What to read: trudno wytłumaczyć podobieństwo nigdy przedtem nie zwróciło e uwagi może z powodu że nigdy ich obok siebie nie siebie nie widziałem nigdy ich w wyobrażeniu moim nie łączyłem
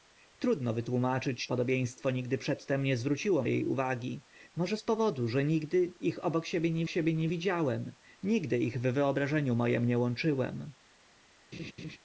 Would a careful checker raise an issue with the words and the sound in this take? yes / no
yes